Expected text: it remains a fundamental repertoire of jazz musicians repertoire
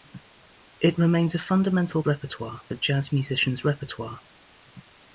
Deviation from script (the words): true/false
false